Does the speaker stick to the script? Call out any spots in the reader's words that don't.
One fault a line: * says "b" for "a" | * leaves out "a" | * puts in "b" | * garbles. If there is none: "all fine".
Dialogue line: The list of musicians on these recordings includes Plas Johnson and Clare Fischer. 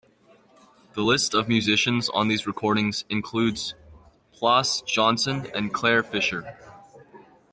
all fine